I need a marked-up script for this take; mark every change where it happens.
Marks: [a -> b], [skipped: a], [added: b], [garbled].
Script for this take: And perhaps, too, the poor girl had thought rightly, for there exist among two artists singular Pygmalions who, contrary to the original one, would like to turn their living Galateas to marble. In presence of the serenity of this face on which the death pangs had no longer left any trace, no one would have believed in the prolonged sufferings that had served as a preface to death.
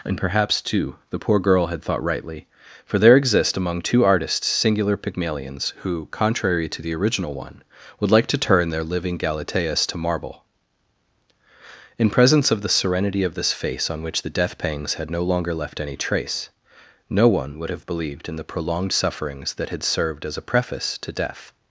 And perhaps, too, the poor girl had thought rightly, for there exist among two artists singular Pygmalions who, contrary to the original one, would like to turn their living Galateas to marble. In presence of the serenity of this face on which the death pangs had no longer left any trace, no one would have believed in the prolonged sufferings that had served as a preface to death.